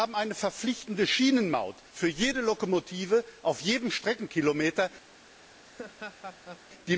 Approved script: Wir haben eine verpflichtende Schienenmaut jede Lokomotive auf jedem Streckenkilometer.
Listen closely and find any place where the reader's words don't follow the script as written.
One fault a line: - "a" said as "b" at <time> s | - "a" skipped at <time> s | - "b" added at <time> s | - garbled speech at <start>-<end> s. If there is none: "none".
- "für" added at 1.9 s